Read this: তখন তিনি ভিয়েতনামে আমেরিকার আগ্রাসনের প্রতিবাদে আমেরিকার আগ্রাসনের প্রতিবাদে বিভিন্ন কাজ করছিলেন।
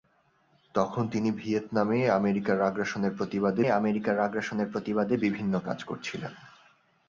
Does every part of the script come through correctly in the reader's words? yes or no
yes